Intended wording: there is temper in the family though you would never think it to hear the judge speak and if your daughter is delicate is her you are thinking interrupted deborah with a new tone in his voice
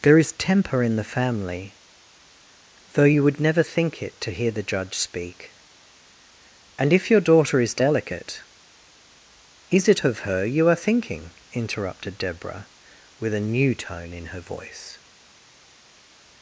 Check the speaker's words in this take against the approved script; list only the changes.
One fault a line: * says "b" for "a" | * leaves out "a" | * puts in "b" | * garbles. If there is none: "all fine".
* puts in "it of"
* says "her" for "his"